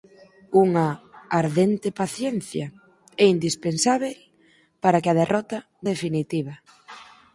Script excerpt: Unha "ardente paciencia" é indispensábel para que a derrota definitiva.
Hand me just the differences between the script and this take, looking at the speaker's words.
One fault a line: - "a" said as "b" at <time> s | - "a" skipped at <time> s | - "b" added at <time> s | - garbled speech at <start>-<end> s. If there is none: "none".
none